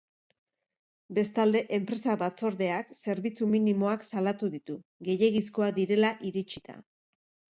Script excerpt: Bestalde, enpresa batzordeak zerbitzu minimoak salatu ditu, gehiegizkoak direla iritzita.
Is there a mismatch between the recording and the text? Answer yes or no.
no